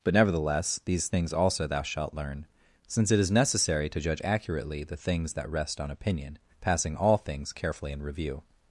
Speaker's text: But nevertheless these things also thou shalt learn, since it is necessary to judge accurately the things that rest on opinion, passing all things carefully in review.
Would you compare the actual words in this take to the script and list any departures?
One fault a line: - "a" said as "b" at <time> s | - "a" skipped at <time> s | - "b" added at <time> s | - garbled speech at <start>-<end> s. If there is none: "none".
none